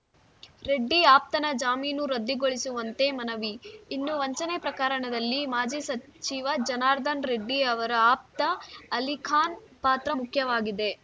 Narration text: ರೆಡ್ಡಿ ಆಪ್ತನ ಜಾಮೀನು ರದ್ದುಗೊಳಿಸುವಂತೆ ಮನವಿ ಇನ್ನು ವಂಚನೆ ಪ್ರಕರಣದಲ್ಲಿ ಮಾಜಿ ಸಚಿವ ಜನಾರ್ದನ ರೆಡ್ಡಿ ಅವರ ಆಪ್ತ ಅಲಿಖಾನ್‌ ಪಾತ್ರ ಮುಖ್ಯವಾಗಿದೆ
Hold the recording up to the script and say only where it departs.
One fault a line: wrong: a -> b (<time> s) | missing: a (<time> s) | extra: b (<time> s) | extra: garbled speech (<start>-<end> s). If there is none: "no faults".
no faults